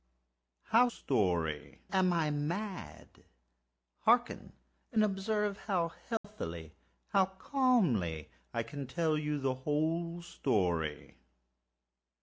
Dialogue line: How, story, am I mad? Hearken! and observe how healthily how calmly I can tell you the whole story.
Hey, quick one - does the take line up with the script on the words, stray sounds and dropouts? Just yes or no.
no